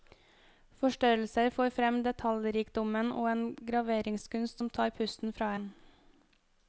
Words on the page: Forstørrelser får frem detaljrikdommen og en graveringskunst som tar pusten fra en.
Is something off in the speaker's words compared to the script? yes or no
no